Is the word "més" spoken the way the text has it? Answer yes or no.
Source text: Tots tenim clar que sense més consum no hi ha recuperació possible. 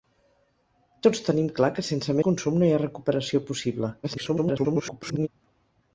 no